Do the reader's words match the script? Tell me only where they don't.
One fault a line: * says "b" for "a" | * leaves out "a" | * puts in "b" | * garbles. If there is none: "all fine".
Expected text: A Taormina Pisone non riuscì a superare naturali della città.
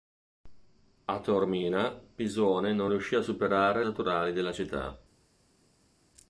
all fine